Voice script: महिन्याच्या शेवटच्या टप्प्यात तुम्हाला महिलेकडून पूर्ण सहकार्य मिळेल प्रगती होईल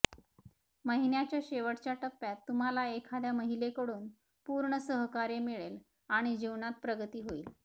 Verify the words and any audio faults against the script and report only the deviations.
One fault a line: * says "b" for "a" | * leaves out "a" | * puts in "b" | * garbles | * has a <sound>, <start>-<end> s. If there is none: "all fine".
* puts in "एखाद्या"
* puts in "आणि जीवनात"